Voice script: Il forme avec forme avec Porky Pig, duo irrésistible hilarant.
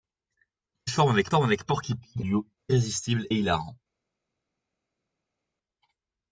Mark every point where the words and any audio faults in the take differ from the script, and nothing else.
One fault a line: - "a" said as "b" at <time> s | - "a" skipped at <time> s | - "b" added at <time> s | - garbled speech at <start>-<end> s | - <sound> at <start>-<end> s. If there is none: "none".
none